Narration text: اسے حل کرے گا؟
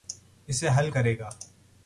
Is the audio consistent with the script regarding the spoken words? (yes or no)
yes